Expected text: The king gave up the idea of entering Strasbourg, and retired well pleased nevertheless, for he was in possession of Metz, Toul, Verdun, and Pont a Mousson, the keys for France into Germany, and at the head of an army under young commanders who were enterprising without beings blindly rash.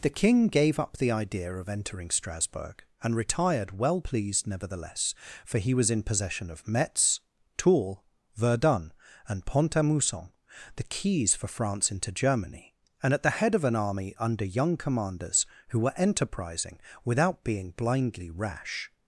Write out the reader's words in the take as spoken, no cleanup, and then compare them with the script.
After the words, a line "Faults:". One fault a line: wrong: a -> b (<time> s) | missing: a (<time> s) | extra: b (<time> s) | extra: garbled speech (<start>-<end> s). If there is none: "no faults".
The king gave up the idea of entering Strasbourg, and retired well pleased nevertheless, for he was in possession of Metz, Toul, Verdun, and Pont a Mousson, the keys for France into Germany, and at the head of an army under young commanders who were enterprising without being blindly rash.
Faults:
wrong: beings -> being (17.4 s)